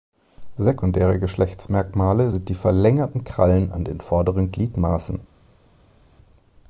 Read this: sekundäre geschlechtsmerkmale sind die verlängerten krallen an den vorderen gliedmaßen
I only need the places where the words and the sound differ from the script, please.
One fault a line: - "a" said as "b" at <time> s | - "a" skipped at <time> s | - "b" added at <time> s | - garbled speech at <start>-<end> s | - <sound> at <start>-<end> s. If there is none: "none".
none